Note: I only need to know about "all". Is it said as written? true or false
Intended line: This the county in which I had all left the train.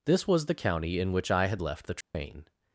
false